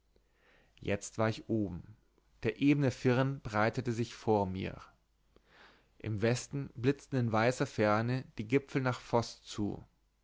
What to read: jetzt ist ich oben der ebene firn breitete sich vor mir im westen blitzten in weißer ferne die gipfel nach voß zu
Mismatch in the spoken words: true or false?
true